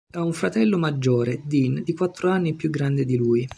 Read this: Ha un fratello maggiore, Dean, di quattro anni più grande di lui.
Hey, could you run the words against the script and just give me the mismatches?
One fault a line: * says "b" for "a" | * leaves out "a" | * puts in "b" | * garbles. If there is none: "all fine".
all fine